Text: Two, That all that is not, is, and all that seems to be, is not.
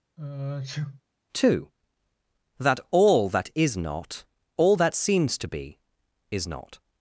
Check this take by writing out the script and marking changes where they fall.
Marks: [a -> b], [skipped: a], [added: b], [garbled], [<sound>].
[sneeze] Two, That all that is not, [skipped: is, and] all that seems to be, is not.